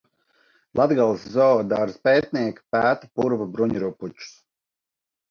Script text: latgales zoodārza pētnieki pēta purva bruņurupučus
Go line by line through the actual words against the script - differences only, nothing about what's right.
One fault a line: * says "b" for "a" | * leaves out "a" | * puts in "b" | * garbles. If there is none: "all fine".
all fine